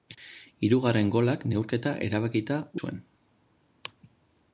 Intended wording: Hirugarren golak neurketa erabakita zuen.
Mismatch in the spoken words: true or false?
false